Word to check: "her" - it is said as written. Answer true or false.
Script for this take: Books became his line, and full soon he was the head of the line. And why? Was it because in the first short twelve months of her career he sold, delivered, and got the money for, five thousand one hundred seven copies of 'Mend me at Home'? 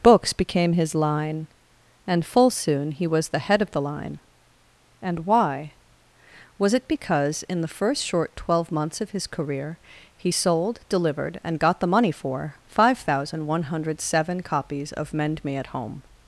false